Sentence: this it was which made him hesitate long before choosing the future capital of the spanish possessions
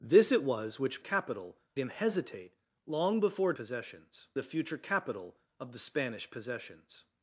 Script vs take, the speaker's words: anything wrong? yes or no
yes